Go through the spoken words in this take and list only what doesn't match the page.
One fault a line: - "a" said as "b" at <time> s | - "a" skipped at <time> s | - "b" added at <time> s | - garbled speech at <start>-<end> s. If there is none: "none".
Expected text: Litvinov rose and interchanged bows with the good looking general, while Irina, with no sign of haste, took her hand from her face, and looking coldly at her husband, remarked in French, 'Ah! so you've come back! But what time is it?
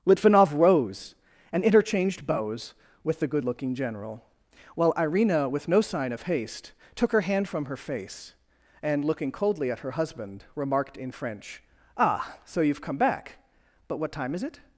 none